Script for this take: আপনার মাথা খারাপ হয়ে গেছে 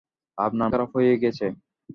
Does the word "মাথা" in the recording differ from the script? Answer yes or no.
yes